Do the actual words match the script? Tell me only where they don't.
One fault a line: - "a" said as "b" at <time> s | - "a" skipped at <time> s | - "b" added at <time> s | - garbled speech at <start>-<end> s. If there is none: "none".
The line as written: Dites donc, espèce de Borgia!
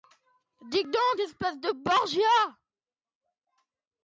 none